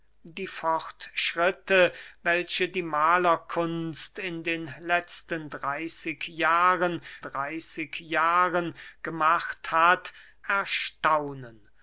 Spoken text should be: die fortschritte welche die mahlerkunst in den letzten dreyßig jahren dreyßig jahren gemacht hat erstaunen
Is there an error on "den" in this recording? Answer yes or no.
no